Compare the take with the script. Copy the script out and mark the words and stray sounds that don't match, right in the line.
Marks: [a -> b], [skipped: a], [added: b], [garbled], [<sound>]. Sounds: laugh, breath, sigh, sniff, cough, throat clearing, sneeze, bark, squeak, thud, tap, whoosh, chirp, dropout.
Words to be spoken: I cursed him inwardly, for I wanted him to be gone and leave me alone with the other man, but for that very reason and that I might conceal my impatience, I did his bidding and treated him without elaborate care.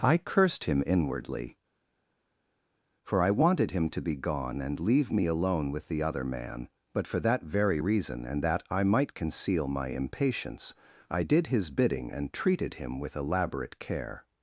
I cursed him inwardly, for I wanted him to be gone and leave me alone with the other man, but for that very reason and that I might conceal my impatience, I did his bidding and treated him [without -> with] elaborate care.